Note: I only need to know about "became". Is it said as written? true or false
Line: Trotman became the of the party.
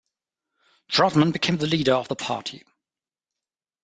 true